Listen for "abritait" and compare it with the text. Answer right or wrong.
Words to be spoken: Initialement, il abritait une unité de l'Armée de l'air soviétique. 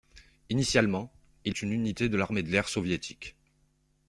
wrong